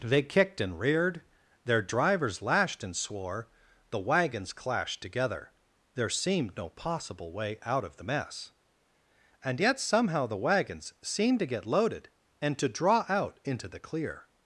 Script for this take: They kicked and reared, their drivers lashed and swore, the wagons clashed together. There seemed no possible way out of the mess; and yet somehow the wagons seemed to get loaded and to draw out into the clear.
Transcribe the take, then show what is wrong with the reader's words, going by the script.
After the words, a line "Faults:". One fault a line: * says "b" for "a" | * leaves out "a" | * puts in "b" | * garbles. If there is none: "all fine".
They kicked and reared, their drivers lashed and swore, the wagons clashed together. There seemed no possible way out of the mess; and yet somehow the wagons seemed to get loaded and to draw out into the clear.
Faults:
all fine